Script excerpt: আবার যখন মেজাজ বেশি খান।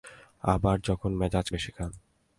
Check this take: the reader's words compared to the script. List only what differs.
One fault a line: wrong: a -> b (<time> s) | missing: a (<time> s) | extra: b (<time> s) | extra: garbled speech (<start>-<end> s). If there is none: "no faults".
no faults